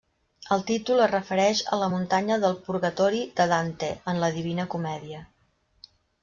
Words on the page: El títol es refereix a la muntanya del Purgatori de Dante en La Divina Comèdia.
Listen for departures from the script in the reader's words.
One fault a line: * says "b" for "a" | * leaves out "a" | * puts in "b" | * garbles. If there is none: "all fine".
all fine